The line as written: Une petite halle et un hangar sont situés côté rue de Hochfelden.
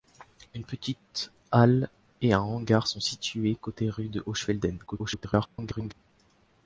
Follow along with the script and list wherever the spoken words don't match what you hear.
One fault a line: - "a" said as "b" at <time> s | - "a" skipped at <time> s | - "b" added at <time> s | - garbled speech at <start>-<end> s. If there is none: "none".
- garbled speech at 4.9-5.9 s